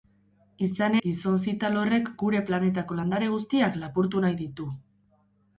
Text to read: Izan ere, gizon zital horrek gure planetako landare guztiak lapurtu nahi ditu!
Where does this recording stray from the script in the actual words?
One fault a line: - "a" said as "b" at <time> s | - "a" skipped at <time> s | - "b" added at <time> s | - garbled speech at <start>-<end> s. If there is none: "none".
- "ere" skipped at 0.9 s